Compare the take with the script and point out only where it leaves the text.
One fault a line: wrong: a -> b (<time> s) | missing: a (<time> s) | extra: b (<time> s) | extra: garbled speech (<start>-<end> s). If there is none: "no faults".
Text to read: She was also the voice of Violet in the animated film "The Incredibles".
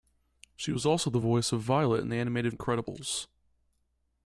missing: film The (2.5 s)